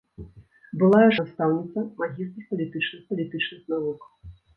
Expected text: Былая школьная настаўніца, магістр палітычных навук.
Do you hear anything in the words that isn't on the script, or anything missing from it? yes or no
yes